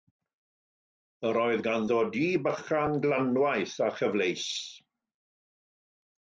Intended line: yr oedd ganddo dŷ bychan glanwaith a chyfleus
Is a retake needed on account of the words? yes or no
no